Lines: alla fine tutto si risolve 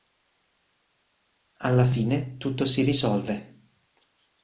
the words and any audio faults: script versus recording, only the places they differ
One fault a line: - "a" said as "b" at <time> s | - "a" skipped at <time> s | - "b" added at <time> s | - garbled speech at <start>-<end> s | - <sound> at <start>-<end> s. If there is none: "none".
none